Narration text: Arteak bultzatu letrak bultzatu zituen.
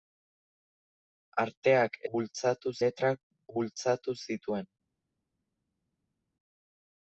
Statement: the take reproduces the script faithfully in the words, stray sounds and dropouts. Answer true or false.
true